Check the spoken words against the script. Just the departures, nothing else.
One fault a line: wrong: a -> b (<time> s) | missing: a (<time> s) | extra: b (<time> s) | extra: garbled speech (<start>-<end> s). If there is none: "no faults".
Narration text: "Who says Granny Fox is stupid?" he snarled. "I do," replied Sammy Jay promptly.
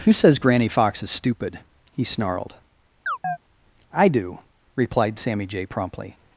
no faults